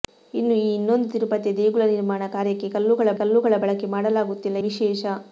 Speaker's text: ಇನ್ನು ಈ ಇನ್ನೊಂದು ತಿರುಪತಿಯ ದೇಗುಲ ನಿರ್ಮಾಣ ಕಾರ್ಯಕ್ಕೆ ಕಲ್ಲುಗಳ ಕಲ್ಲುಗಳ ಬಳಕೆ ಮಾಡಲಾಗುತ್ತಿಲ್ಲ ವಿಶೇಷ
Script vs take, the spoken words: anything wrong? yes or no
no